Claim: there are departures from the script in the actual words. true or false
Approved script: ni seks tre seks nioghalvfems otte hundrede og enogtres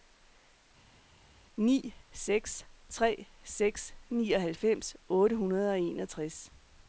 false